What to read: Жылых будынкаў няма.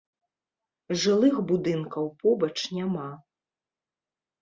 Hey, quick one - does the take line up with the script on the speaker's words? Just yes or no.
no